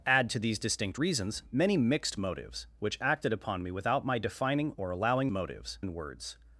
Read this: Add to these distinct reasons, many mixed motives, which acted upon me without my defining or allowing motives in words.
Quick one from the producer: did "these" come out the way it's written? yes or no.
yes